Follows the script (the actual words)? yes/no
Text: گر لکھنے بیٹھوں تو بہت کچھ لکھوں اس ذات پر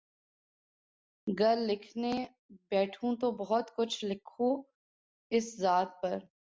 yes